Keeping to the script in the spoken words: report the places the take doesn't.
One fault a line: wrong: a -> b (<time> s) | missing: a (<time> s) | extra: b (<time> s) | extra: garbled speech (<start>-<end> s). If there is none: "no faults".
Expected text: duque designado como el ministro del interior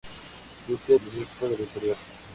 missing: designado como (1.0 s)